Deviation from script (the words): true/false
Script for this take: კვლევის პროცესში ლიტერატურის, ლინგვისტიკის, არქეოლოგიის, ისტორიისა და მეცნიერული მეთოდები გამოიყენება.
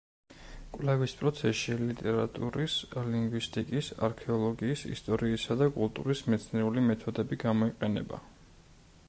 true